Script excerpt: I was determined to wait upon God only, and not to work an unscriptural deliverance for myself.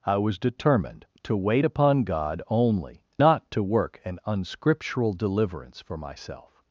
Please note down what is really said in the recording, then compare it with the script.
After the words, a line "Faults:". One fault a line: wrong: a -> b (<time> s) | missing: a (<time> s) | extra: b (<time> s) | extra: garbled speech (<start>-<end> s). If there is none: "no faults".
I was determined to wait upon God only, not to work an unscriptural deliverance for myself.
Faults:
missing: and (3.0 s)